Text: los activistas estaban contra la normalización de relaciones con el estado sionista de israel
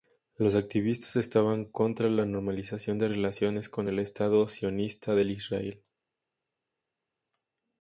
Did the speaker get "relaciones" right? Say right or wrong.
right